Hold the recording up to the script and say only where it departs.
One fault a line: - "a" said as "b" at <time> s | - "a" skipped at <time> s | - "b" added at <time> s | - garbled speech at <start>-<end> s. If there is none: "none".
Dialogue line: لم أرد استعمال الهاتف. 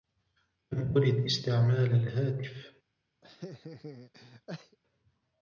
none